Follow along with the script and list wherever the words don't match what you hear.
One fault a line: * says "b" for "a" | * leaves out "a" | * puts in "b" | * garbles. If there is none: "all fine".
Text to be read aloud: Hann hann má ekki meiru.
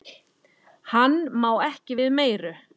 * leaves out "hann"
* puts in "við"